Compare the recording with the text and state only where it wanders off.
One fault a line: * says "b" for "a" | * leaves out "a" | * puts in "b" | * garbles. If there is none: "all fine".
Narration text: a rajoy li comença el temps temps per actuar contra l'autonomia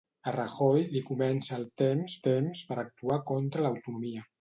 all fine